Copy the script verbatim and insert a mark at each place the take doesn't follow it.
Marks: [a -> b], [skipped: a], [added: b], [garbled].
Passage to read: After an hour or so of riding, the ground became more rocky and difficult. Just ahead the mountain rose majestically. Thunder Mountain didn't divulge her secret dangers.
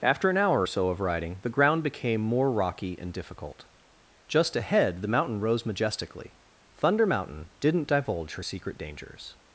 After an hour or so of riding, the ground became more rocky and difficult. Just ahead the mountain rose majestically. Thunder Mountain didn't divulge her secret dangers.